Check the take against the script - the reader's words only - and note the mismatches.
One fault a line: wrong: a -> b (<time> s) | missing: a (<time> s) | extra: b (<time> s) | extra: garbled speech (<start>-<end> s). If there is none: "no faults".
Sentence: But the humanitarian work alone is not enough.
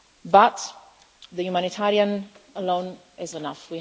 missing: work (2.3 s)
missing: not (3.4 s)